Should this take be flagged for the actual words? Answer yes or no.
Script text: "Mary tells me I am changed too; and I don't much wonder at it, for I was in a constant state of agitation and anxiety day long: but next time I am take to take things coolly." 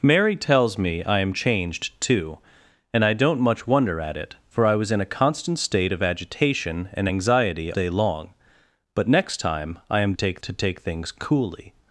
no